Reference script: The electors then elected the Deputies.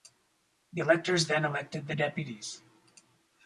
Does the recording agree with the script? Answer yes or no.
yes